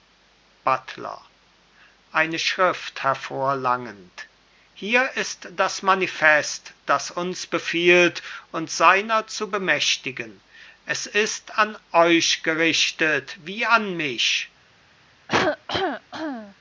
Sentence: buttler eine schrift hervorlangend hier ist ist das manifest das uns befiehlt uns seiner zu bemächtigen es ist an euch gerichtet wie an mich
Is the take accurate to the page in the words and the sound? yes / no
no